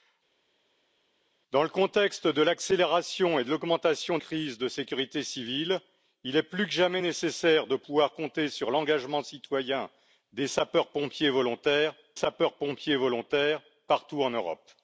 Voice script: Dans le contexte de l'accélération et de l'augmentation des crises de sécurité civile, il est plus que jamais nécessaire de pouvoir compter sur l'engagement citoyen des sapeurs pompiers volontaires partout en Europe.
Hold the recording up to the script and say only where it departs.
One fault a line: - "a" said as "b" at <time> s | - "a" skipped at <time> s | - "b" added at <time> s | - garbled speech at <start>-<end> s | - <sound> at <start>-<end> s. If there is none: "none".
- "des" skipped at 4.2 s
- "sapeurs pompiers volontaires" added at 12.1 s